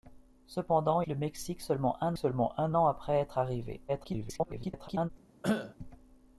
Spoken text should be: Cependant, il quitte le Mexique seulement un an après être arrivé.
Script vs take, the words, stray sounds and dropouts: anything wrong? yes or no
yes